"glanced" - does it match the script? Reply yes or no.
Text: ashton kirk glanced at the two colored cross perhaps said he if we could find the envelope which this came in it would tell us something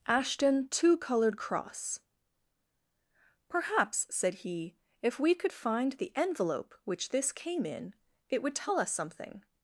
no